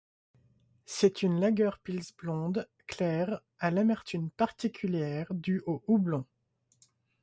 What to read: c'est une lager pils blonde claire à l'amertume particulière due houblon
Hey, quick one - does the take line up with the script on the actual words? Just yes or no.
no